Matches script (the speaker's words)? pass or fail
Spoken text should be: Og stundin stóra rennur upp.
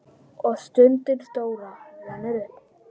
pass